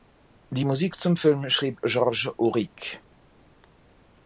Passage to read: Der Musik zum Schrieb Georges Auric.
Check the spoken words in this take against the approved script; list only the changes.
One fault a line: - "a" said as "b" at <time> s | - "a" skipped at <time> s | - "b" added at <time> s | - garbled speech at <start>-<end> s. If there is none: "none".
- "Der" said as "Die" at 0.5 s
- "Film" added at 1.2 s